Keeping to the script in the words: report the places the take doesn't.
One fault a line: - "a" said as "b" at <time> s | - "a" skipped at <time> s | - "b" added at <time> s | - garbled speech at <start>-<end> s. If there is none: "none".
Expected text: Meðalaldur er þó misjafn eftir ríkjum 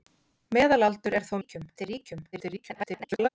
- "misjafn" said as "ríkjum" at 1.4 s
- garbled speech at 2.3-3.3 s